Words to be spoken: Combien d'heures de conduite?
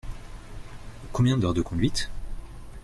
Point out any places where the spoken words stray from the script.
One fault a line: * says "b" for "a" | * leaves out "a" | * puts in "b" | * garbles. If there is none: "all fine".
all fine